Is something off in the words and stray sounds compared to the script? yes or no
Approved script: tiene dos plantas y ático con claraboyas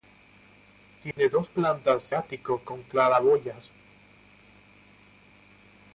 yes